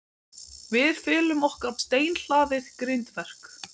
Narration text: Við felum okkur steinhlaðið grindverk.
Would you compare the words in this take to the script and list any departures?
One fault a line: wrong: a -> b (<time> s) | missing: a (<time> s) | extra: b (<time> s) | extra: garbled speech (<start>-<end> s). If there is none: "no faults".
no faults